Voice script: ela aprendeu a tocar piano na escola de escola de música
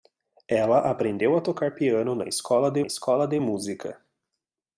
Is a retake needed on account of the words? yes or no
no